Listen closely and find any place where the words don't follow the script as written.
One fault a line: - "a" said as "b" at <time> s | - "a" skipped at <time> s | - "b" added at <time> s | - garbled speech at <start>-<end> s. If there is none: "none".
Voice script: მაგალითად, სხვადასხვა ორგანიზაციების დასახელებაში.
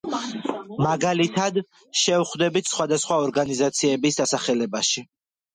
- "შევხვდებით" added at 2.0 s